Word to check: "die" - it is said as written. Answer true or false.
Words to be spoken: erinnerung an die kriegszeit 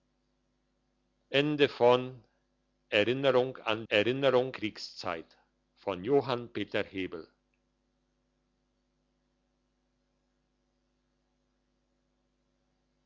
false